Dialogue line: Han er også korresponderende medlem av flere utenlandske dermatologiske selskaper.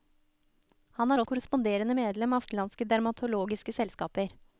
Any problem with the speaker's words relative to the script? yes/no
yes